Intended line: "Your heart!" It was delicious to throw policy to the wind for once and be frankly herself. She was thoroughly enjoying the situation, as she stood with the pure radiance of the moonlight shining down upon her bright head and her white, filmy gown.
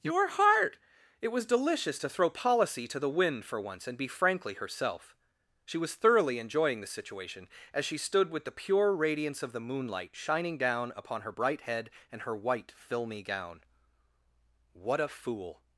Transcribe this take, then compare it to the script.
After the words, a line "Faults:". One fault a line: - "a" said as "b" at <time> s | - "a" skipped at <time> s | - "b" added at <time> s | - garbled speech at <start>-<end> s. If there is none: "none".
"Your heart!" It was delicious to throw policy to the wind for once and be frankly herself. She was thoroughly enjoying the situation, as she stood with the pure radiance of the moonlight shining down upon her bright head and her white, filmy gown. "What a fool
Faults:
- "What a fool" added at 14.7 s